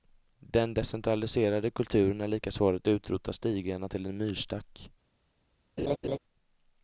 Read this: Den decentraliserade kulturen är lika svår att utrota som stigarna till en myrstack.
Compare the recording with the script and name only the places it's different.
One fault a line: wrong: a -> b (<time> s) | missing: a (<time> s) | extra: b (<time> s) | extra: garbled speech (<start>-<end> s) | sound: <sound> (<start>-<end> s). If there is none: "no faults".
missing: som (3.3 s)
sound: laugh (5.8-6.2 s)